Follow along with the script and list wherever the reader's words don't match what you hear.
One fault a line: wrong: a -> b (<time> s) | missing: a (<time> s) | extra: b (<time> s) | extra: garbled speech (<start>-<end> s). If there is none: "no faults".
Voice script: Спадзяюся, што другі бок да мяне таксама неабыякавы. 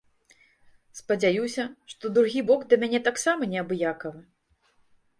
no faults